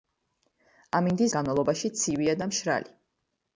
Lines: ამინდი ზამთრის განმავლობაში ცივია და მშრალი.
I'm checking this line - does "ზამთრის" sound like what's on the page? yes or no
no